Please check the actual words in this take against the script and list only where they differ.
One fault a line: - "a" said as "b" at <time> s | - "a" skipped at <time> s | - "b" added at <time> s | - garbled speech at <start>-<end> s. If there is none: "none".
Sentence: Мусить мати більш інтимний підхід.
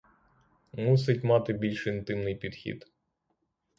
none